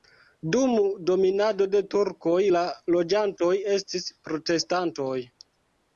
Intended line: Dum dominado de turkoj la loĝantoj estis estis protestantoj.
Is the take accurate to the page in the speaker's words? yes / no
no